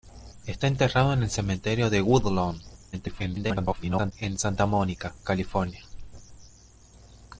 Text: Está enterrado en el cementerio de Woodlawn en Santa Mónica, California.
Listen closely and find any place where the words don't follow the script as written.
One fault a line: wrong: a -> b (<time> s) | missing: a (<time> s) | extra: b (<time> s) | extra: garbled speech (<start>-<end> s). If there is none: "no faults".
extra: garbled speech (2.9-4.1 s)